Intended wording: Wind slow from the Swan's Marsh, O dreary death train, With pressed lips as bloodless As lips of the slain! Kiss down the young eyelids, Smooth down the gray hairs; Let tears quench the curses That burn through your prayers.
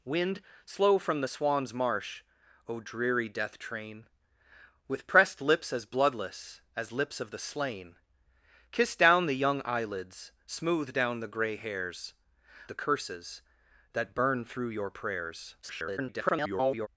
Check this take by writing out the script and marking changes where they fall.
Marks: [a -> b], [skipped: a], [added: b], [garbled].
Wind slow from the Swan's Marsh, O dreary death train, With pressed lips as bloodless As lips of the slain! Kiss down the young eyelids, Smooth down the gray hairs; [skipped: Let tears quench] the curses That burn through your prayers. [garbled]